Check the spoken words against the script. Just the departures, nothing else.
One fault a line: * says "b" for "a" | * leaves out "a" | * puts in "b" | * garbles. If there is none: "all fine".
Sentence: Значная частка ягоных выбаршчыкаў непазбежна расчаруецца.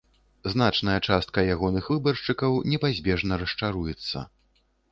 all fine